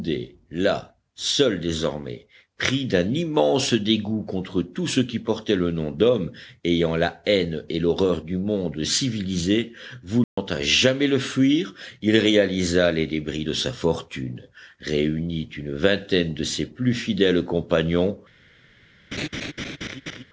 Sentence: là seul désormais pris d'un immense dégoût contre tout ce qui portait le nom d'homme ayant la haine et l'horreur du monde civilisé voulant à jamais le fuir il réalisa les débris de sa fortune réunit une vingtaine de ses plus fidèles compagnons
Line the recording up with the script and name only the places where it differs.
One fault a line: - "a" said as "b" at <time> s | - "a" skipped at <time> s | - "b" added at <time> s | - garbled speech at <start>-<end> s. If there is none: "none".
none